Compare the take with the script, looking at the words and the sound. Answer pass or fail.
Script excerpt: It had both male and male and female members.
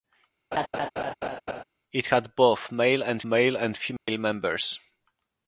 fail